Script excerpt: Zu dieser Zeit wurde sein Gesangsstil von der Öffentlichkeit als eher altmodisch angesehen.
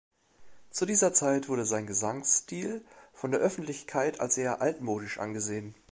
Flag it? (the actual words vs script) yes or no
no